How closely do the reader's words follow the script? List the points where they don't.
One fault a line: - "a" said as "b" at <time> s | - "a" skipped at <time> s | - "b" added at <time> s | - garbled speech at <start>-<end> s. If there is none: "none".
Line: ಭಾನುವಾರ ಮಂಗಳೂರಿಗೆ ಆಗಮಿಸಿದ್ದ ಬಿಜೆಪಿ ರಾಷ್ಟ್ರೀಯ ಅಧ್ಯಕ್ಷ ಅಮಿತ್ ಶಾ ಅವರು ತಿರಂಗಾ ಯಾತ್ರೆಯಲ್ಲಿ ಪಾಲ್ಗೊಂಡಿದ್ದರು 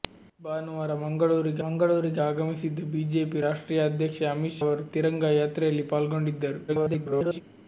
- "ಮಂಗಳೂರಿಗೆ" added at 1.6 s
- "ಶಾ" skipped at 4.6 s
- garbled speech at 6.7-7.4 s